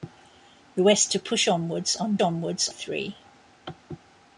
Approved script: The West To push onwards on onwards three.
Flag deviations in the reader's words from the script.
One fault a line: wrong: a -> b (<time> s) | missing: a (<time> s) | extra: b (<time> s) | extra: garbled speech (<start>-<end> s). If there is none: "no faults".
no faults